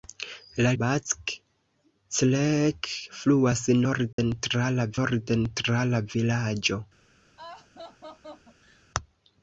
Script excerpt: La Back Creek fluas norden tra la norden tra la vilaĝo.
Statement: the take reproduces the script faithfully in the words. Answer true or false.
true